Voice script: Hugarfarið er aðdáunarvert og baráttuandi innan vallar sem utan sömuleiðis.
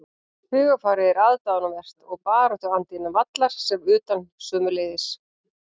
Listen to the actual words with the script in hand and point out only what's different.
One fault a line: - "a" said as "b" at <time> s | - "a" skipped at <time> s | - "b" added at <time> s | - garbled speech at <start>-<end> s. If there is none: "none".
none